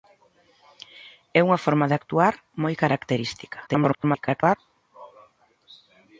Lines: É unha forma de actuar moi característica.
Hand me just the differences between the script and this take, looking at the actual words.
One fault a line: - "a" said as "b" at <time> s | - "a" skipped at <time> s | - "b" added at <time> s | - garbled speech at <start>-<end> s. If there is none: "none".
- garbled speech at 3.7-4.6 s